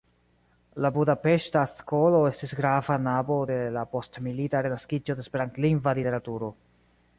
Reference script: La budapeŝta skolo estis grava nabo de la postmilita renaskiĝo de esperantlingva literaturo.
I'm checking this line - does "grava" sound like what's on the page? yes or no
yes